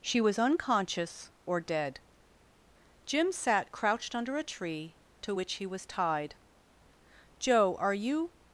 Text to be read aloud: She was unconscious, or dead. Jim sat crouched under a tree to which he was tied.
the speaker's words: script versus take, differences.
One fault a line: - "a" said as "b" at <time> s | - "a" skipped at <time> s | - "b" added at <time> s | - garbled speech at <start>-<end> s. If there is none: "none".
- "Joe are you" added at 7.4 s